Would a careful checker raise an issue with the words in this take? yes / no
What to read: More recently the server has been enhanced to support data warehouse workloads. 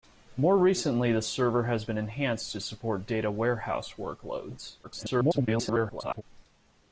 yes